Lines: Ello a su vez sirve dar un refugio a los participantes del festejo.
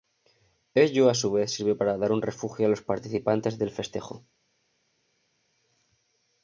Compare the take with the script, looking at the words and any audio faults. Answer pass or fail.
fail